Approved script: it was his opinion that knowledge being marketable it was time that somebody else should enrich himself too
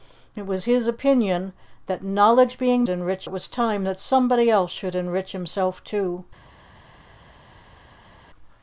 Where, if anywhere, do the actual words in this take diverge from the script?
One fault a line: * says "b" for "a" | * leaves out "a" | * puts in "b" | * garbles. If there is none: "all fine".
* says "enrich" for "marketable"